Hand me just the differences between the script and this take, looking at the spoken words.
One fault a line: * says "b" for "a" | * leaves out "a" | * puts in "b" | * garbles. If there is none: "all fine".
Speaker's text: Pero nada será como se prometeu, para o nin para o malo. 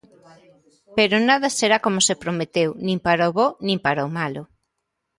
* puts in "nin"
* puts in "bo"